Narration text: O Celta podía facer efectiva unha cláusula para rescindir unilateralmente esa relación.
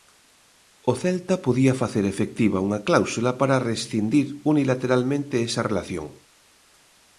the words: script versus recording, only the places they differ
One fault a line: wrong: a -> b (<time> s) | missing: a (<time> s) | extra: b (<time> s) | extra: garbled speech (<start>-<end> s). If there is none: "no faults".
no faults